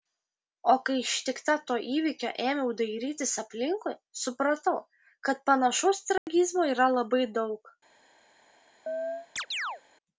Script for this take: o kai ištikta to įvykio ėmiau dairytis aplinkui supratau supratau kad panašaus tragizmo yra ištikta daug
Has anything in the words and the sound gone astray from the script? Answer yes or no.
yes